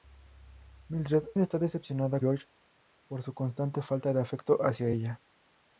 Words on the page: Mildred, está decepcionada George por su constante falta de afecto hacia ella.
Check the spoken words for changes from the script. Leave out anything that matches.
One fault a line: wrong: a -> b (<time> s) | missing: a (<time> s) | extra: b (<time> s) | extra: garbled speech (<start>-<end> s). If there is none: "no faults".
no faults